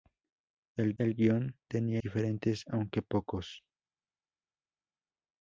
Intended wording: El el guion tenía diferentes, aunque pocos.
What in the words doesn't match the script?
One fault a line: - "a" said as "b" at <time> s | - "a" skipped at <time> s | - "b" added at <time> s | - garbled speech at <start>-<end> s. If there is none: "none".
none